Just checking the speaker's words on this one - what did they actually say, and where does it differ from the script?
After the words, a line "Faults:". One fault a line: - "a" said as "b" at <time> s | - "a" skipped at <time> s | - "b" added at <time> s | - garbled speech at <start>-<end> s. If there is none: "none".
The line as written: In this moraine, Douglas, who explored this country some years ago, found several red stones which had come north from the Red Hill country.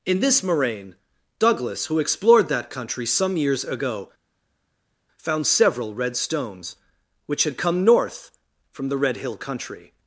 In this moraine, Douglas, who explored that country some years ago, found several red stones which had come north from the Red Hill country.
Faults:
- "this" said as "that" at 2.5 s